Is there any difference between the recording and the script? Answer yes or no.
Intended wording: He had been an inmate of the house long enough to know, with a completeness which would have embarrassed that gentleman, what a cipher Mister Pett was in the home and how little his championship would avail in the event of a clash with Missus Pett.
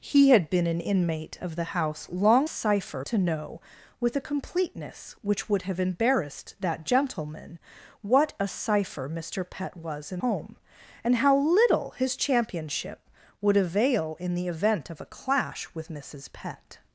yes